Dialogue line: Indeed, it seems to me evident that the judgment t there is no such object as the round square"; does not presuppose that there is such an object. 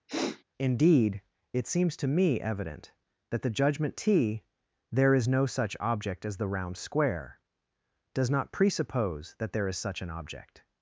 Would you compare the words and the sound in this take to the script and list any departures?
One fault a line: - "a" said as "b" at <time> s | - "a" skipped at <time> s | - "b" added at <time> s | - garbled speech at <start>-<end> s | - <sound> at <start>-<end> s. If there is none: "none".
- sniff at 0.1-0.4 s